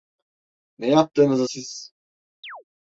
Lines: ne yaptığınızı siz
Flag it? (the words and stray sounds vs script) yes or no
yes